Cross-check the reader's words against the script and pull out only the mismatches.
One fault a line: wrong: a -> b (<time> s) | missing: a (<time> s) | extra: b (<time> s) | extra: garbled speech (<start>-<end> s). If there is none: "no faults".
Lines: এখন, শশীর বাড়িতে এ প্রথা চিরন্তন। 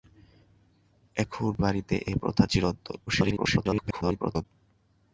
missing: শশীর (1.5 s)
extra: garbled speech (3.1-4.5 s)